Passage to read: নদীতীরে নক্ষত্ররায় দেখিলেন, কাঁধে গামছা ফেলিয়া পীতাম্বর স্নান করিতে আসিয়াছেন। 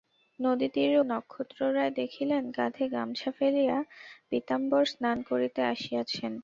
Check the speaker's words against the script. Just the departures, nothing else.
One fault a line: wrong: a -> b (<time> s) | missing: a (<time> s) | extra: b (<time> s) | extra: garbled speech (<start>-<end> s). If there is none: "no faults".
no faults